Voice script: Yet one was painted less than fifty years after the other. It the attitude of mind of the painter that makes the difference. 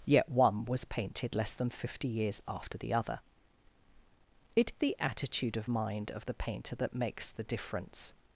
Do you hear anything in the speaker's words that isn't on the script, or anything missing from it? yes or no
no